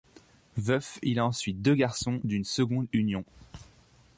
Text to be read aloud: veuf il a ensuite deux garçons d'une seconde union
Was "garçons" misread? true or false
false